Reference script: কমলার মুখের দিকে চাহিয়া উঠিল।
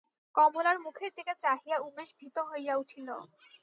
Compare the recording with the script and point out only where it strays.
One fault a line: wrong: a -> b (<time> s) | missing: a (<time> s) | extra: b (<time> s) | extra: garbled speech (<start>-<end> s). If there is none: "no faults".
extra: উমেশ ভীত হইয়া (1.9 s)